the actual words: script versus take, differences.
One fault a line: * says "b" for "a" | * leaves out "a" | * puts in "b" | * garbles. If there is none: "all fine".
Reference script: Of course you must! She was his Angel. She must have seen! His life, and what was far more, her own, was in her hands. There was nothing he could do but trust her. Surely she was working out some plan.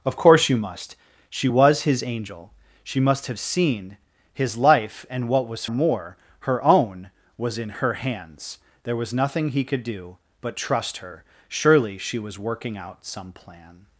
* leaves out "far"